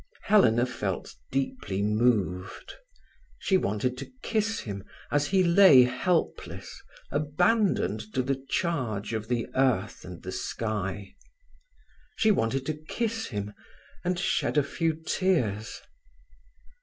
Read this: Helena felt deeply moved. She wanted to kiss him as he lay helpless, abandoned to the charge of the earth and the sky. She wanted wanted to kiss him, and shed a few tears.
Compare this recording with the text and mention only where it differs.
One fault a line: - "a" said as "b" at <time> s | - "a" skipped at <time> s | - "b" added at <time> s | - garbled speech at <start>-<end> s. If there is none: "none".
- "wanted" skipped at 12.7 s